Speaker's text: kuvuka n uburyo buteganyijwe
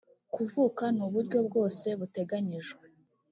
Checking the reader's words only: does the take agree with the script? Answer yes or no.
no